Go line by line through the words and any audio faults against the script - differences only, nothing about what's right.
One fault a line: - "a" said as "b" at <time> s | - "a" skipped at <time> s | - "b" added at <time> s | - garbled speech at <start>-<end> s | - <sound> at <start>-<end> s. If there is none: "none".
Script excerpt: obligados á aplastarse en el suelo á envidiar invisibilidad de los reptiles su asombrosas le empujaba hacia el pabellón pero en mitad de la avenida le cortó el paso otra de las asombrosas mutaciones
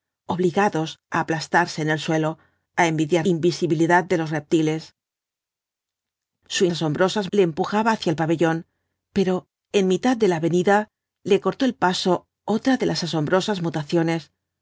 none